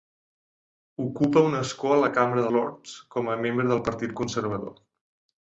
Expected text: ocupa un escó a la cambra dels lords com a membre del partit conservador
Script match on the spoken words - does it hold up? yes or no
no